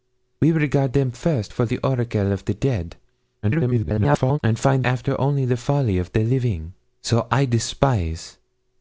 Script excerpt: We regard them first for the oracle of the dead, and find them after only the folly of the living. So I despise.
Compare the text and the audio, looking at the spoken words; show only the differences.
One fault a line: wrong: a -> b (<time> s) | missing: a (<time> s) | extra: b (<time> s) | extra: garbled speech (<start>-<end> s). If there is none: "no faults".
extra: garbled speech (3.4-4.4 s)
missing: them (4.8 s)